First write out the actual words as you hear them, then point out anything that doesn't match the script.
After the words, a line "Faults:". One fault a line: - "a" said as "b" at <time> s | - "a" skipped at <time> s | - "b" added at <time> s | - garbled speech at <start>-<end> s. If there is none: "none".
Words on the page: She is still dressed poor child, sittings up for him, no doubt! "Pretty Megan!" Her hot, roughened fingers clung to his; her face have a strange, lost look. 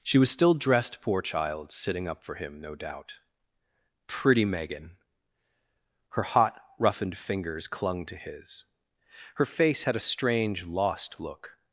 She was still dressed poor child, sitting up for him, no doubt! "Pretty Megan!" Her hot, roughened fingers clung to his; her face had a strange, lost look.
Faults:
- "is" said as "was" at 0.2 s
- "sittings" said as "sitting" at 1.7 s
- "have" said as "had" at 9.8 s